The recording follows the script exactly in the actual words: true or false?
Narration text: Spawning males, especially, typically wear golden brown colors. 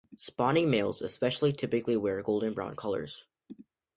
true